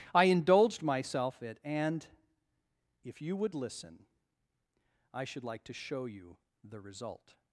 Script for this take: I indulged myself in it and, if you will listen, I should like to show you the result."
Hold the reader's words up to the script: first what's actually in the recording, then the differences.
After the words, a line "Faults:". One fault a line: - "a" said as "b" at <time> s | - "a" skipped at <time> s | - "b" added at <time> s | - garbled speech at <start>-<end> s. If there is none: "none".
I indulged myself it and, if you would listen, I should like to show you the result."
Faults:
- "in" skipped at 1.4 s
- "will" said as "would" at 3.4 s